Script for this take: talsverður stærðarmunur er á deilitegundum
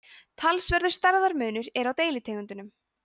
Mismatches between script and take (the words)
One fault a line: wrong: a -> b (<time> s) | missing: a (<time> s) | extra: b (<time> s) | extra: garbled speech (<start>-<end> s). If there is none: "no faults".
no faults